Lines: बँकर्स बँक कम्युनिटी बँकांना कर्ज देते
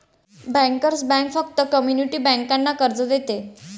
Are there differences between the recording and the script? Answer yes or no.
yes